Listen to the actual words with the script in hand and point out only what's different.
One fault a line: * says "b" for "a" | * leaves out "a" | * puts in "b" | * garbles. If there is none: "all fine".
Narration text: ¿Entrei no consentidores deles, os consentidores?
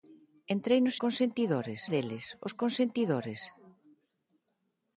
all fine